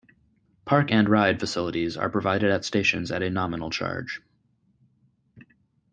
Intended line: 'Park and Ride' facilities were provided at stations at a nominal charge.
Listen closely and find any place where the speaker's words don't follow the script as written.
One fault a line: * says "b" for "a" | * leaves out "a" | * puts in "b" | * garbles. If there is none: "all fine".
* says "are" for "were"